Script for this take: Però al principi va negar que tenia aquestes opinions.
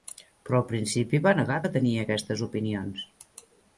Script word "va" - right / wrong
right